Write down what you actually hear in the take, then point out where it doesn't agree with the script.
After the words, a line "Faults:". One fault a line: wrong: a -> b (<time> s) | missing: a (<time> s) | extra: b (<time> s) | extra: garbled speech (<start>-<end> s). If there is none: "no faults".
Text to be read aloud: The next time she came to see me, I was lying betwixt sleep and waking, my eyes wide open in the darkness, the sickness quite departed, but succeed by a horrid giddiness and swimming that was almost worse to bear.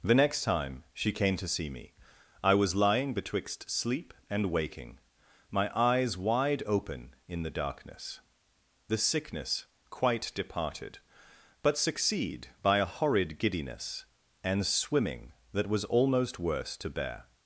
The next time she came to see me, I was lying betwixt sleep and waking, my eyes wide open in the darkness, the sickness quite departed, but succeed by a horrid giddiness and swimming that was almost worse to bear.
Faults:
no faults